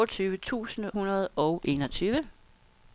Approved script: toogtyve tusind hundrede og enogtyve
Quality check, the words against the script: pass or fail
pass